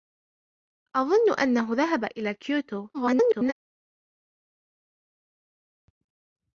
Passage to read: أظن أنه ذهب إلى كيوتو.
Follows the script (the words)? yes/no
no